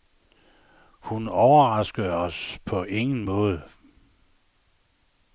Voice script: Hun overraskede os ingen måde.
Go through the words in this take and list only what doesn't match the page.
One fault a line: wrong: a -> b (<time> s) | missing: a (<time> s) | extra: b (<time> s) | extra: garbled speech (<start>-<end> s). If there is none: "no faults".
extra: på (2.6 s)